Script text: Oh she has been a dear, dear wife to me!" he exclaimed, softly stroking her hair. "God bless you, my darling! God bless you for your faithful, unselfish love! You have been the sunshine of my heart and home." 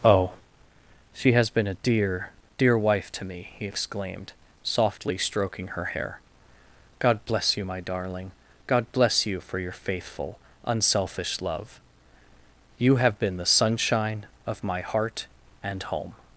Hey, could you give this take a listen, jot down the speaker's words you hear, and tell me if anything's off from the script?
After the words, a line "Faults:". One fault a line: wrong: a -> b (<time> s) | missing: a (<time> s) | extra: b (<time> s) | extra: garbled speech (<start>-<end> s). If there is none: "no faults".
Oh she has been a dear, dear wife to me!" he exclaimed, softly stroking her hair. "God bless you, my darling! God bless you for your faithful, unselfish love! You have been the sunshine of my heart and home."
Faults:
no faults